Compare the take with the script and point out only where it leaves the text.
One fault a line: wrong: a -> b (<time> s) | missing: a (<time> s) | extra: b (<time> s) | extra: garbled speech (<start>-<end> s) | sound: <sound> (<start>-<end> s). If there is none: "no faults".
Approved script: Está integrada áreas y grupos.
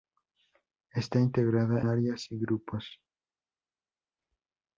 no faults